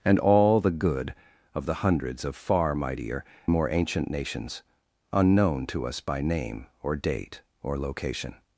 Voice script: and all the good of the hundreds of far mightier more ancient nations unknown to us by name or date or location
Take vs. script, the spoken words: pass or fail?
pass